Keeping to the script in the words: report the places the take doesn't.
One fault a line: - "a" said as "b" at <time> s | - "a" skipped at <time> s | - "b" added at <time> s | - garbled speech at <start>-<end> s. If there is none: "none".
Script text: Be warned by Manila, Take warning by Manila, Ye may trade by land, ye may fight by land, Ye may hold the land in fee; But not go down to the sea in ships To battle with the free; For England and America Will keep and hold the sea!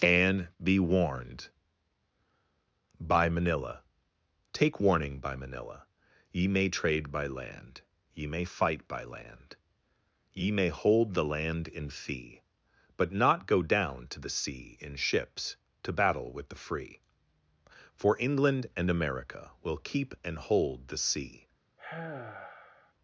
- "and" added at 0.0 s